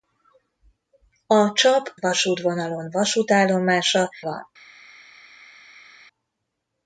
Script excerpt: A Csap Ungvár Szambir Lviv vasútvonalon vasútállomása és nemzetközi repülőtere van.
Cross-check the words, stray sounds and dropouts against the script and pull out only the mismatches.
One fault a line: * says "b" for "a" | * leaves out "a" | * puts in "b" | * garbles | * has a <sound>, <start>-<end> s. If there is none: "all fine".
* leaves out "Ungvár Szambir Lviv"
* leaves out "és nemzetközi repülőtere"